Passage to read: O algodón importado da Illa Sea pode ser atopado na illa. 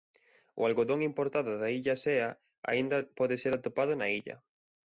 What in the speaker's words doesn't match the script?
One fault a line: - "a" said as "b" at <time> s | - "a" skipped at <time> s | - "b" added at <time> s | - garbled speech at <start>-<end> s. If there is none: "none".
- "aínda" added at 2.7 s